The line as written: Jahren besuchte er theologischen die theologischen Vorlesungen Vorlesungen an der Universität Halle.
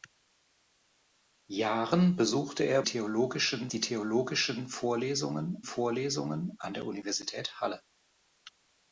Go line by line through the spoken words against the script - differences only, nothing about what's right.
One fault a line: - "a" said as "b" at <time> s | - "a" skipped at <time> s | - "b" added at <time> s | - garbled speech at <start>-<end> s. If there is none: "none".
none